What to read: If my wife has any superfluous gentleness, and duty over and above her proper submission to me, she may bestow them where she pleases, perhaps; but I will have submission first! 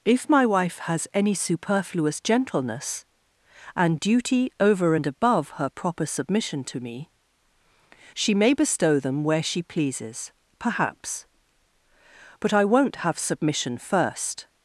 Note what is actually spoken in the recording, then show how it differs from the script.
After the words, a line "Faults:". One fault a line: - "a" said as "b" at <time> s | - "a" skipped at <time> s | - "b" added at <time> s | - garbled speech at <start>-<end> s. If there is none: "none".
If my wife has any superfluous gentleness, and duty over and above her proper submission to me, she may bestow them where she pleases, perhaps; but I won't have submission first!
Faults:
- "will" said as "won't" at 12.7 s